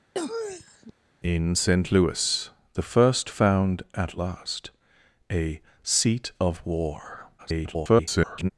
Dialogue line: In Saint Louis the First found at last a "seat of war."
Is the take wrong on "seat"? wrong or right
right